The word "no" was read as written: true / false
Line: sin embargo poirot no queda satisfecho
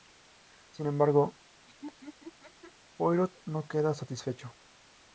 true